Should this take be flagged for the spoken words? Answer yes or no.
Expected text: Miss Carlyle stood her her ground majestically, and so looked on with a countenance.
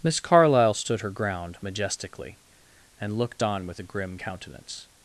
yes